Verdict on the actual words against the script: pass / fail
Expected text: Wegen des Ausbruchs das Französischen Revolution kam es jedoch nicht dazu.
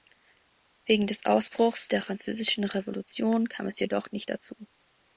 fail